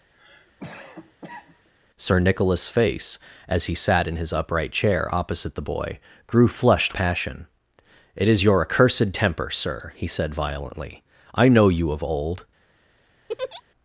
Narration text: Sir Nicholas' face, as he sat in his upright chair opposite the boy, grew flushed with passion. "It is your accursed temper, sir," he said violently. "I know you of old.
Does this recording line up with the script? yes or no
no